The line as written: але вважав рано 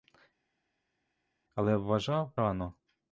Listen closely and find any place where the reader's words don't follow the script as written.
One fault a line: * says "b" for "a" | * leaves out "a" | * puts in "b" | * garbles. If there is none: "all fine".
all fine